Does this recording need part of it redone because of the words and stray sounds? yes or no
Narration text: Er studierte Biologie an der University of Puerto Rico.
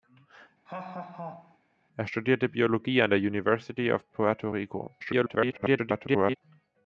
yes